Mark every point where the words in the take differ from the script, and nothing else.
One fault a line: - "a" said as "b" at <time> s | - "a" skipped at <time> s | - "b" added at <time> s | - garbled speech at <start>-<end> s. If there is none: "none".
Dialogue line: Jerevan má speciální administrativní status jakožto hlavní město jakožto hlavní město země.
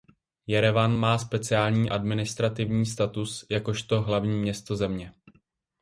- "jakožto hlavní město" skipped at 4.8 s